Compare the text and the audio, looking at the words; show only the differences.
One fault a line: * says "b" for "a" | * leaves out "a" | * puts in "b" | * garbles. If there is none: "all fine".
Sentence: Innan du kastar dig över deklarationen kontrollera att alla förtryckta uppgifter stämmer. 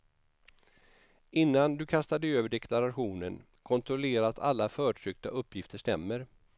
all fine